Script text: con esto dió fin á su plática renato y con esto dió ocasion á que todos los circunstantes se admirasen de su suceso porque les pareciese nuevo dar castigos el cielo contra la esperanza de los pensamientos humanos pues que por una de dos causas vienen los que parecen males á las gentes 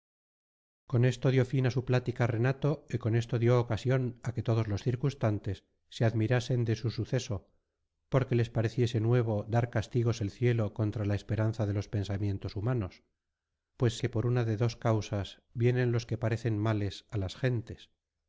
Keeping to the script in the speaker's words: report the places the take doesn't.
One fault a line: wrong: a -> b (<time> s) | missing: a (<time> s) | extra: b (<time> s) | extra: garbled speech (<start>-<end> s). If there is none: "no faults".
no faults